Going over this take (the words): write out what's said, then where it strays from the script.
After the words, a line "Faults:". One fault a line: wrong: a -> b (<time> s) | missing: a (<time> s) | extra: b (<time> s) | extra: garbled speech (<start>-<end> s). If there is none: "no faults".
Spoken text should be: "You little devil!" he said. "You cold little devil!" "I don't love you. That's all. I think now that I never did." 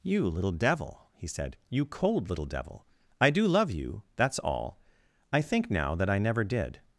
"You little devil!" he said. "You cold little devil!" "I do love you. That's all. I think now that I never did."
Faults:
wrong: don't -> do (3.3 s)